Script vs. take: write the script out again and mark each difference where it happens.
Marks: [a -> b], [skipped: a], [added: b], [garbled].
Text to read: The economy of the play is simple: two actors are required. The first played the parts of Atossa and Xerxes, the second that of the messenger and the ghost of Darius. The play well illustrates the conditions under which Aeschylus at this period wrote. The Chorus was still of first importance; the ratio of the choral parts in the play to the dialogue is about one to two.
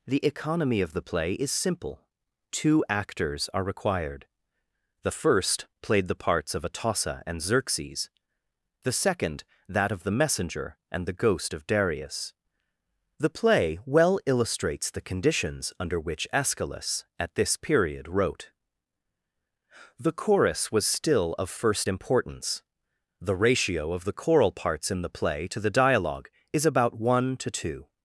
The economy of the play is simple: two actors are required. The first played the parts of Atossa and Xerxes, the second that of the messenger and the ghost of Darius. The play well illustrates the conditions under which Aeschylus at this period wrote. The Chorus was still of first importance; the ratio of the choral parts in the play to the dialogue is about one to two.